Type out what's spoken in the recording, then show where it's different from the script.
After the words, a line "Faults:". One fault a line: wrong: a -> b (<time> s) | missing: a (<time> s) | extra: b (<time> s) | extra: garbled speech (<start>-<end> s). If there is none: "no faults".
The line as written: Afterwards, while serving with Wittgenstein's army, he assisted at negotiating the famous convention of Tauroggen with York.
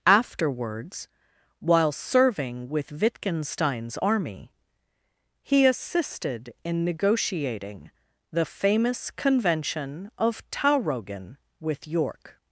Afterwards, while serving with Wittgenstein's army, he assisted in negotiating the famous convention of Tauroggen with York.
Faults:
wrong: at -> in (6.6 s)